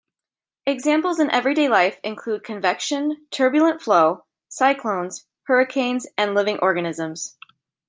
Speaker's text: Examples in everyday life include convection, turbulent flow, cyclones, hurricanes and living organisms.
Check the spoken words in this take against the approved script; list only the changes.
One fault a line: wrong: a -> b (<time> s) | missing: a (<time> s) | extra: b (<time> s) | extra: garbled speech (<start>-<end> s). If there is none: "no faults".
no faults